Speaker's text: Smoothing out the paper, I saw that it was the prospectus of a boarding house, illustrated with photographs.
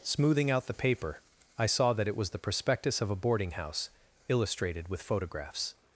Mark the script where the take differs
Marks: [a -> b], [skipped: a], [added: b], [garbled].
Smoothing out the paper, I saw that it was the prospectus of a boarding house, illustrated with photographs.